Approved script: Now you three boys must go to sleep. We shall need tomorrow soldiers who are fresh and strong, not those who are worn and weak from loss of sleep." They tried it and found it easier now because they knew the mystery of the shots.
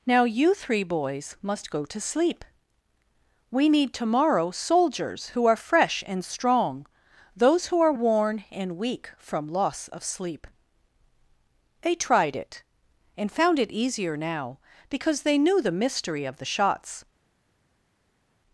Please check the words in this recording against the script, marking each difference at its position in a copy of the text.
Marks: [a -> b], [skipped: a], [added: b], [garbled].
Now you three boys must go to sleep. We [skipped: shall] need tomorrow soldiers who are fresh and strong, [skipped: not] those who are worn and weak from loss of sleep." They tried it and found it easier now because they knew the mystery of the shots.